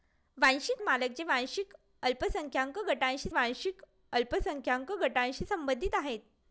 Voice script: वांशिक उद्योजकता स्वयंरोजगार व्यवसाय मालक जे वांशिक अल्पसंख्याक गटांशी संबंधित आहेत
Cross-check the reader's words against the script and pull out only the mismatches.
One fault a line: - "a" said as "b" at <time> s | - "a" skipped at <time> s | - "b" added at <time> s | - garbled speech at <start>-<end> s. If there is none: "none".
- "उद्योजकता स्वयंरोजगार व्यवसाय मालक जे" said as "मालक जे वांशिक अल्पसंख्याक गटांशी" at 0.8 s